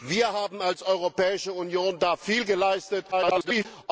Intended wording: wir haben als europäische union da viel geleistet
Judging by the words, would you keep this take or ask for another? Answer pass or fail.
fail